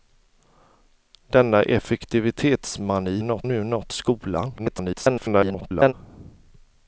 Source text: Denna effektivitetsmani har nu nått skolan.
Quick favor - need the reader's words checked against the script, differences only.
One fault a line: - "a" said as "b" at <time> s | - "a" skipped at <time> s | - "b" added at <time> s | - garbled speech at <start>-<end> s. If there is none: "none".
- "har" said as "nått" at 3.2 s
- garbled speech at 4.6-5.9 s